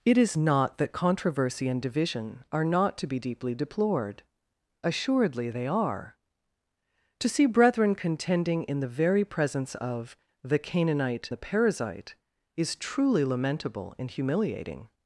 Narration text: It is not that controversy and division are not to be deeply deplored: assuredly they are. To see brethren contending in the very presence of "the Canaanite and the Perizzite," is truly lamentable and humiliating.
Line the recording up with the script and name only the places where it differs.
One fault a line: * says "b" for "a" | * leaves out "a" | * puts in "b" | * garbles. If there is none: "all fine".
* leaves out "and"